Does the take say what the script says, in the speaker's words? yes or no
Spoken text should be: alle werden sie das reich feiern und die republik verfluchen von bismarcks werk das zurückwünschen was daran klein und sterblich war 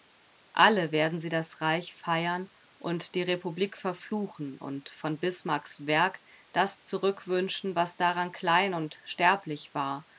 no